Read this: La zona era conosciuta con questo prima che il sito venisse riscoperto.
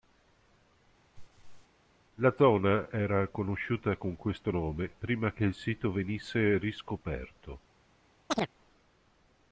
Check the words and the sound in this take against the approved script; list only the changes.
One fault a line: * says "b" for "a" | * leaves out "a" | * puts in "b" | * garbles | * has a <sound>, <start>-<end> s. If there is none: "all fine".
* has a laugh, 1.2-1.7 s
* puts in "nome"
* has a chirp, 8.3-8.5 s